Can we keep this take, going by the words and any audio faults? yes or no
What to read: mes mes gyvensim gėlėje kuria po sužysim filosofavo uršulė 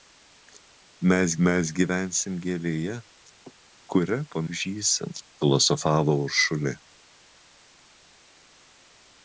yes